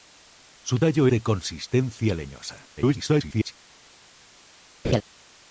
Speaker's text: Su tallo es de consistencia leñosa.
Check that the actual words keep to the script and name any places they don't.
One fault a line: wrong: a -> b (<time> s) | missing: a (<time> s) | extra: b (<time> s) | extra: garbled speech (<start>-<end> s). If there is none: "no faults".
missing: es (1.1 s)
extra: garbled speech (2.8-3.5 s)